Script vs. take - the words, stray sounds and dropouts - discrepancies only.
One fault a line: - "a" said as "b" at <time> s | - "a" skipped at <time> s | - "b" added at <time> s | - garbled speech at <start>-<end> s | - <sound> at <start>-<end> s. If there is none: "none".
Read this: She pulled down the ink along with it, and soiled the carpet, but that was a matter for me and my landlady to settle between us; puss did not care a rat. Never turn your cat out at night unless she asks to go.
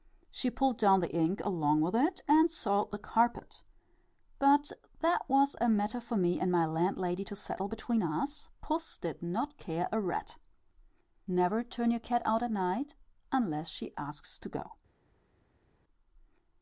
none